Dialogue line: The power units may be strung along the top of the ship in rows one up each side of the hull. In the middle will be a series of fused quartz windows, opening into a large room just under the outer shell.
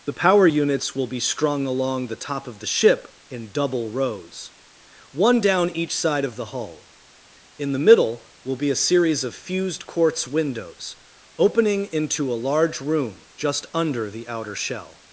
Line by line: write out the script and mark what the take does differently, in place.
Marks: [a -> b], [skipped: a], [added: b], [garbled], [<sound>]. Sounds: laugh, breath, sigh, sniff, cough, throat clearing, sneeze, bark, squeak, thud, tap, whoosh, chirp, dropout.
The power units [may -> will] be strung along the top of the ship in [added: double] rows one [up -> down] each side of the hull. In the middle will be a series of fused quartz windows, opening into a large room just under the outer shell.